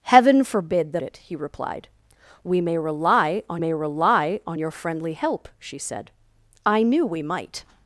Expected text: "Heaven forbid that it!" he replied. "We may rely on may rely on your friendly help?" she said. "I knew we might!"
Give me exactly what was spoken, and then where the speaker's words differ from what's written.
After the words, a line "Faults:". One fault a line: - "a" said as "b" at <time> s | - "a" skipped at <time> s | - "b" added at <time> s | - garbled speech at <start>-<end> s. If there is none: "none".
"Heaven forbid that it!" he replied. "We may rely on may rely on your friendly help?" she said. "I knew we might!"
Faults:
none